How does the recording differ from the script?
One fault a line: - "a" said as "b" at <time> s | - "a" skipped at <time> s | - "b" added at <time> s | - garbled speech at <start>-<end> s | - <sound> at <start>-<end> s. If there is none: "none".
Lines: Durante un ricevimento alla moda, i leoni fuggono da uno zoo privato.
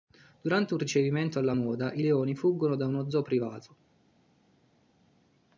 none